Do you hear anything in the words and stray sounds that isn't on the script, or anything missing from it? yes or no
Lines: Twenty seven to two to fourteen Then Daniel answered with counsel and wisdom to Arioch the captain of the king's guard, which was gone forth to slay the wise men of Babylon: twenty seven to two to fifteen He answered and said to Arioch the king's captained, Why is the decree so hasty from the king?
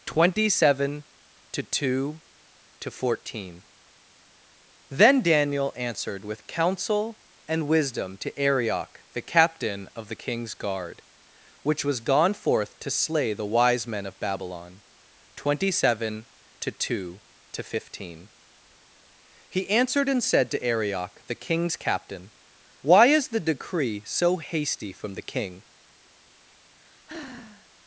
yes